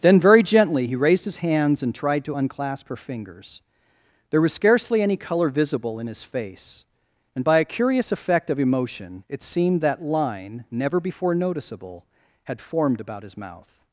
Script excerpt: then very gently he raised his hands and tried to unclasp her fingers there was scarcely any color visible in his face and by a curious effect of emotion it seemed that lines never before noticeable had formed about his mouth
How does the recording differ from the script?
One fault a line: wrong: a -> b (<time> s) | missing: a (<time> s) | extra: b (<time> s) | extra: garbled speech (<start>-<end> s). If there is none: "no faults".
wrong: lines -> line (10.0 s)